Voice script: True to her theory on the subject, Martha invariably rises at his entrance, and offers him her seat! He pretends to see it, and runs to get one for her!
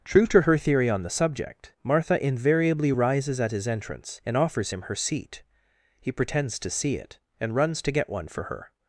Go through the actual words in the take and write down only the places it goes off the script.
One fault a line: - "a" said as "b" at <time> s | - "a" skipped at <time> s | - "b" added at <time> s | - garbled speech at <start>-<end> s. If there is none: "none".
none